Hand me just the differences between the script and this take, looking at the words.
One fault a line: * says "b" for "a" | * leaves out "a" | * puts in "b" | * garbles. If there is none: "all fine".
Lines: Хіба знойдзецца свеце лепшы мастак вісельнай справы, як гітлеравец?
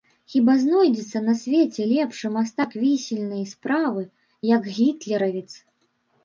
* puts in "на"